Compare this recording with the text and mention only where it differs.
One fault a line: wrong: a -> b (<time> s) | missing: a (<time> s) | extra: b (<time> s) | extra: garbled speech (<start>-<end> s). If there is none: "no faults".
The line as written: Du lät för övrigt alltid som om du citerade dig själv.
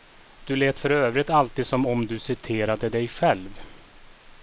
no faults